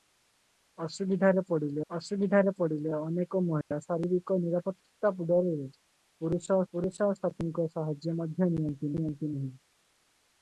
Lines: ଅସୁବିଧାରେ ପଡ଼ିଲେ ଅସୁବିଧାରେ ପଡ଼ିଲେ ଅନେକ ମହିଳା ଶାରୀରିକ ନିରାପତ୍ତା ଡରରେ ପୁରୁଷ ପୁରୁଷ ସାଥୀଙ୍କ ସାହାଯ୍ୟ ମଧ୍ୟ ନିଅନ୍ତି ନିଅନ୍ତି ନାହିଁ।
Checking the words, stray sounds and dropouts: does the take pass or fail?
fail